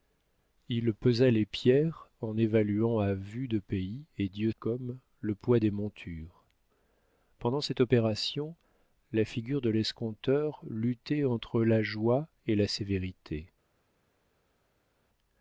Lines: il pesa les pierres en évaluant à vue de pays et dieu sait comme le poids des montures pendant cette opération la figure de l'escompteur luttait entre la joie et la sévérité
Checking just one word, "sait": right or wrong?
wrong